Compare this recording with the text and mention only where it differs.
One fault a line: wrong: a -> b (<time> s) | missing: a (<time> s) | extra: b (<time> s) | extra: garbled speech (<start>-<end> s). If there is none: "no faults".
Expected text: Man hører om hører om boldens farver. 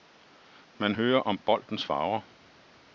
missing: hører om (1.4 s)